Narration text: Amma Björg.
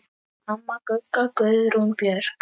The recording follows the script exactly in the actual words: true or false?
false